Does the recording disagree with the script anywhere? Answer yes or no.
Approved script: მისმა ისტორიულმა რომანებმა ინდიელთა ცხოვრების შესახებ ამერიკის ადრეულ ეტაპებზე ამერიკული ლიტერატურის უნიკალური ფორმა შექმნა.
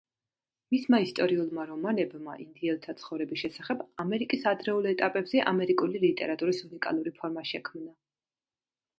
no